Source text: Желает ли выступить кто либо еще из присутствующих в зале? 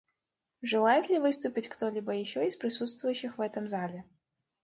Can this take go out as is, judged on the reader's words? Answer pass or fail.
fail